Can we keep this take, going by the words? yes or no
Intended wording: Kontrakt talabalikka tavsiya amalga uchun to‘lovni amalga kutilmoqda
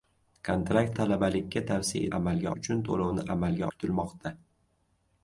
yes